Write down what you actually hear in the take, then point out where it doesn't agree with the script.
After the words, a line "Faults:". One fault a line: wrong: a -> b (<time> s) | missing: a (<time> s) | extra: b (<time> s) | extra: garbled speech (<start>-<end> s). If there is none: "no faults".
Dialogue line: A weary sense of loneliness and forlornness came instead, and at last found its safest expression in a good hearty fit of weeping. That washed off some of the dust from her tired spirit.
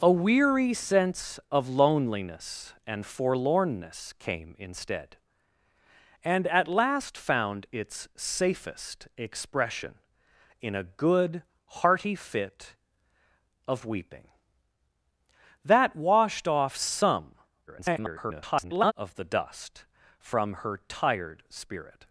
A weary sense of loneliness and forlornness came instead, and at last found its safest expression in a good hearty fit of weeping. That washed off some [garbled] of the dust from her tired spirit.
Faults:
extra: garbled speech (17.7-18.9 s)